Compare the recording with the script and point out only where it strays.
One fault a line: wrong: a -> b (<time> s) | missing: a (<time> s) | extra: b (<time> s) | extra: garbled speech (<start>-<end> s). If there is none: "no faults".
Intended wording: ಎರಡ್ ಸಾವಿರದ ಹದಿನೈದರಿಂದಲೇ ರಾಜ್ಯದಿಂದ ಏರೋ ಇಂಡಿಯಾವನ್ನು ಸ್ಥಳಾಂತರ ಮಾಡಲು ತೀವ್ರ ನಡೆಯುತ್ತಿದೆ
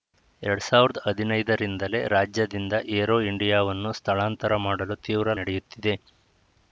no faults